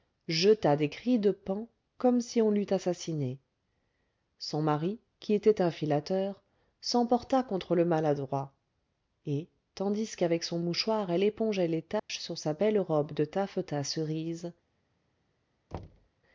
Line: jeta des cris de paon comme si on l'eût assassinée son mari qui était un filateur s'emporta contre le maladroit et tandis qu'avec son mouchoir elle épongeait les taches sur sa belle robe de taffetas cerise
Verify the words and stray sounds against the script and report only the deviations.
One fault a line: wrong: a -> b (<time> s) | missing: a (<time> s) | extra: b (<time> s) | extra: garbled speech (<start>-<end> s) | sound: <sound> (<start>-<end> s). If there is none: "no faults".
sound: dropout (12.0-12.1 s)
sound: thud (15.7-16.1 s)